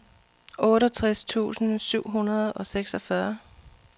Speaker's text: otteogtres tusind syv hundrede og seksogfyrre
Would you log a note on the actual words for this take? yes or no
no